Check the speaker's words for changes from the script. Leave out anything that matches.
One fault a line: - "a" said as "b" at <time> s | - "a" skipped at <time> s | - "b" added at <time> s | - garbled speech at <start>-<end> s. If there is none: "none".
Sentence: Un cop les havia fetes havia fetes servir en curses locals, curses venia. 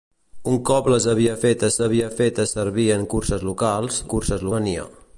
none